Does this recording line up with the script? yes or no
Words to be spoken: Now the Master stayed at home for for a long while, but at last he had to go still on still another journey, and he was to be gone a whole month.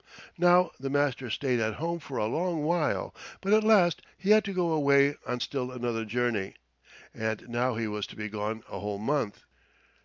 no